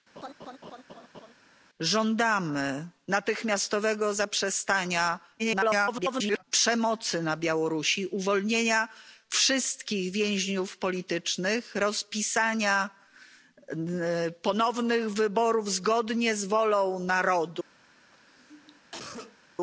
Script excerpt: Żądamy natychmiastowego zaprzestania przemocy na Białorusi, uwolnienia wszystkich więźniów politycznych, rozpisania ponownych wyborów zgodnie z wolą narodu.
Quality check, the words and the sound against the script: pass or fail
fail